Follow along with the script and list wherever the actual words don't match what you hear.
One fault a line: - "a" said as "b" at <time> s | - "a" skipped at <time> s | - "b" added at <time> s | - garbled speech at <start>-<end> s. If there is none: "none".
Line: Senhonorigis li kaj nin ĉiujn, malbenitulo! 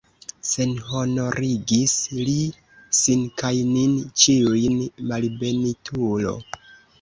- "sin" added at 3.0 s